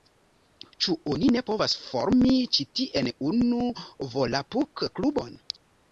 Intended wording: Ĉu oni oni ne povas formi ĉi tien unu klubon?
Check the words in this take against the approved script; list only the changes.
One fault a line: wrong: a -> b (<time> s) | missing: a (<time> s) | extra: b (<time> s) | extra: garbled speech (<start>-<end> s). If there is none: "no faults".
missing: oni (1.3 s)
extra: volapuk (4.1 s)